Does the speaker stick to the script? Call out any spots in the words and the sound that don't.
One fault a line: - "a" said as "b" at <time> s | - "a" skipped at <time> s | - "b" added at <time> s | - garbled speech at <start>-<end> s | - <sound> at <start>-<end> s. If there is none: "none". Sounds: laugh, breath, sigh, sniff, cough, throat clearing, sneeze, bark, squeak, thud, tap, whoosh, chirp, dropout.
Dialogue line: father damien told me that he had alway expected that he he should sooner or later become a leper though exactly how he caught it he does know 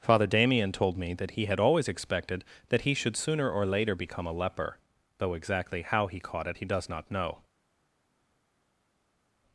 - "alway" said as "always" at 1.6 s
- "he" skipped at 3.0 s
- "not" added at 6.9 s